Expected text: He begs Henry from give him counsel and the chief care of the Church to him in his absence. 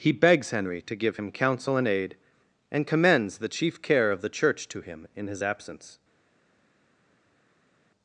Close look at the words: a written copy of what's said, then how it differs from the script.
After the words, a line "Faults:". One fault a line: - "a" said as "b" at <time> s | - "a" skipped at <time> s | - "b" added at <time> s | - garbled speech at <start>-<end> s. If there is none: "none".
He begs Henry to give him counsel and aid, and commends the chief care of the Church to him in his absence.
Faults:
- "from" said as "to" at 0.8 s
- "aid and commends" added at 1.8 s